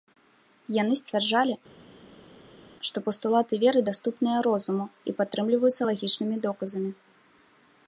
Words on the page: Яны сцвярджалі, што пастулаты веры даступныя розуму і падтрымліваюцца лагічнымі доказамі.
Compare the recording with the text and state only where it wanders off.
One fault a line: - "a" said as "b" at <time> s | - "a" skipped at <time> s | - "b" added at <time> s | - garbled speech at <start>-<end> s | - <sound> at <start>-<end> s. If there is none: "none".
none